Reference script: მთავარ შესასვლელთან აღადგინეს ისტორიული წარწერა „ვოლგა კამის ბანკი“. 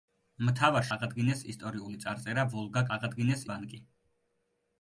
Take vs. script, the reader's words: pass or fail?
fail